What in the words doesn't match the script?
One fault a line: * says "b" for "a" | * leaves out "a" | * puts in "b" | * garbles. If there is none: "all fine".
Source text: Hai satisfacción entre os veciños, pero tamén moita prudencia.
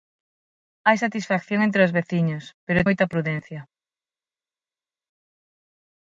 * leaves out "tamén"